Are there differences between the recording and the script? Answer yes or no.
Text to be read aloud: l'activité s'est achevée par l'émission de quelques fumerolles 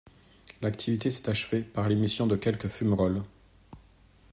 no